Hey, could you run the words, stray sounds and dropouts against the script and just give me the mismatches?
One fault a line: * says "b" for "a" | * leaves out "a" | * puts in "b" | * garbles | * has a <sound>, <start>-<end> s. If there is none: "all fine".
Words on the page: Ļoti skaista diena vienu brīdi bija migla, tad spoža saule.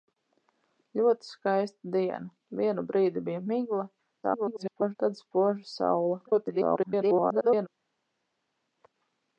* garbles
* garbles